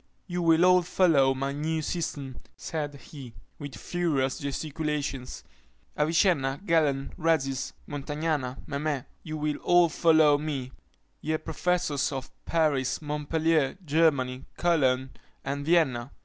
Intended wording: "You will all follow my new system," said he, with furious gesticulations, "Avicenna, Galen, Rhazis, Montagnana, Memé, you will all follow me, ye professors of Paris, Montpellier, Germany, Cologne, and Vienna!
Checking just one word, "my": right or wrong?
right